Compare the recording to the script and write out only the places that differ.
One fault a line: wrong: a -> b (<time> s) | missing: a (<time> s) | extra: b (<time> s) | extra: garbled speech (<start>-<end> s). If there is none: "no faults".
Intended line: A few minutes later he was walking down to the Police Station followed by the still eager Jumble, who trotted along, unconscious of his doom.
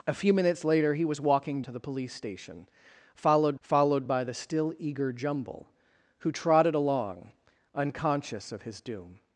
missing: down (1.6 s)
extra: followed (3.6 s)